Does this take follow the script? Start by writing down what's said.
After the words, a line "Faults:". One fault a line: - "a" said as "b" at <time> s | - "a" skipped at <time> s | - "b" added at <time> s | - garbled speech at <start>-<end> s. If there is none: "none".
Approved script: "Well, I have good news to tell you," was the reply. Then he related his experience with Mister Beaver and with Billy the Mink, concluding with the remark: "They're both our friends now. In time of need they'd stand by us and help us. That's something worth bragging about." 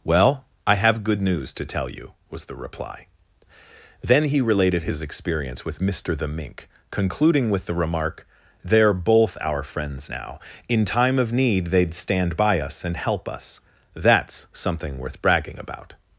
"Well, I have good news to tell you," was the reply. Then he related his experience with Mister the Mink, concluding with the remark: "They're both our friends now. In time of need they'd stand by us and help us. That's something worth bragging about."
Faults:
- "Beaver and with Billy" skipped at 6.2 s